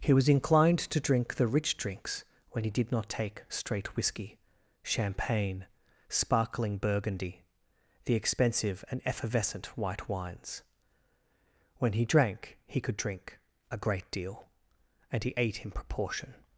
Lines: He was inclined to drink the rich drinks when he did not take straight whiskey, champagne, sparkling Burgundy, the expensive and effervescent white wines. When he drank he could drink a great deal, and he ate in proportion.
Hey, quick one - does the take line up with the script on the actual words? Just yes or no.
yes